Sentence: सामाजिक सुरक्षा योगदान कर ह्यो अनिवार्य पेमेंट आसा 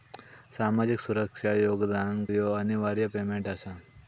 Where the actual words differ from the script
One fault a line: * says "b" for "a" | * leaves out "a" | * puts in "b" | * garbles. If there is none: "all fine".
* leaves out "कर"